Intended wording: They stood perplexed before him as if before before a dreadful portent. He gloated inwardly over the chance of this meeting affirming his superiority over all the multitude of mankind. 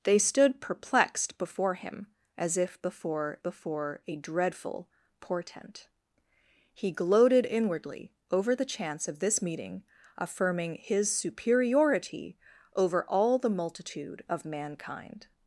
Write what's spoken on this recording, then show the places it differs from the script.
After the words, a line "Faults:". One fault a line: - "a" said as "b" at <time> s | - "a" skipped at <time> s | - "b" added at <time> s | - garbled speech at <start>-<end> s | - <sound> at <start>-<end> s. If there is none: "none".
They stood perplexed before him as if before before a dreadful portent. He gloated inwardly over the chance of this meeting affirming his superiority over all the multitude of mankind.
Faults:
none